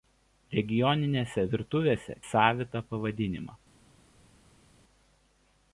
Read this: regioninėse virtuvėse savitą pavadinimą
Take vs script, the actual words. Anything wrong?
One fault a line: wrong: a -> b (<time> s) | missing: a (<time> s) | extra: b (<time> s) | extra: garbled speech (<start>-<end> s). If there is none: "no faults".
no faults